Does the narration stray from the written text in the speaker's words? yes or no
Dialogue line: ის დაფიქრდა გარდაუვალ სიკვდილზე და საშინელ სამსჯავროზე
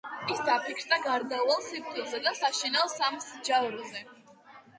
no